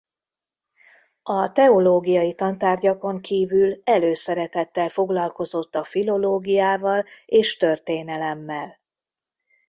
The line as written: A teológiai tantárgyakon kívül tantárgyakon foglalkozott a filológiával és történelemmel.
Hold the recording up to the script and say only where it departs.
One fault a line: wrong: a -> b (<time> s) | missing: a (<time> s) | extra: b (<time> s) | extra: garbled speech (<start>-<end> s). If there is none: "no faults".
wrong: tantárgyakon -> előszeretettel (3.8 s)